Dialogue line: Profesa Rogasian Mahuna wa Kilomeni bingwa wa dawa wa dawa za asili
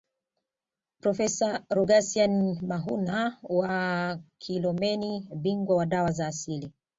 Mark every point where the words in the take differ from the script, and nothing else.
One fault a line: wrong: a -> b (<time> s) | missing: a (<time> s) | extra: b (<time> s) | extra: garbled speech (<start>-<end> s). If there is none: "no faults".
missing: wa dawa (6.1 s)